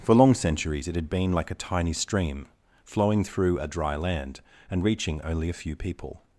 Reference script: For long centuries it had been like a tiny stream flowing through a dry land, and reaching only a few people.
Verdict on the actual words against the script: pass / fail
pass